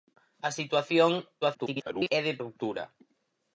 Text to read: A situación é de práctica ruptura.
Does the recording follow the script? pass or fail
fail